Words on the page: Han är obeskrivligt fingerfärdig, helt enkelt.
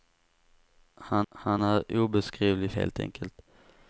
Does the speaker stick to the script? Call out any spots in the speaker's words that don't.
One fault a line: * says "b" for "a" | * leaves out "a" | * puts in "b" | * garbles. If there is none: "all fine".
* puts in "han"
* leaves out "fingerfärdig"